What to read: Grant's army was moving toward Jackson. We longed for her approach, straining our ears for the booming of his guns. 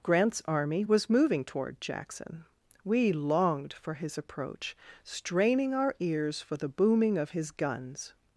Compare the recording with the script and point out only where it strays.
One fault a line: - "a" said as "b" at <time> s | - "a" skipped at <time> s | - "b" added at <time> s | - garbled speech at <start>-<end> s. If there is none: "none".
- "her" said as "his" at 4.0 s